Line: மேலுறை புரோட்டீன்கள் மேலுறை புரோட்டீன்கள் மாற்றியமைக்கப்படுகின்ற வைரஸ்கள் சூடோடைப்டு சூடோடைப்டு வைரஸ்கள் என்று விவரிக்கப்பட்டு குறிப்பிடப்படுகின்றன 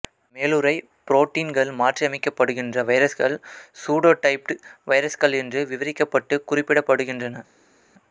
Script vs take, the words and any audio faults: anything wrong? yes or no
yes